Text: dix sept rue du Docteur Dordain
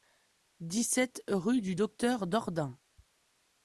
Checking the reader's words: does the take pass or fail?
pass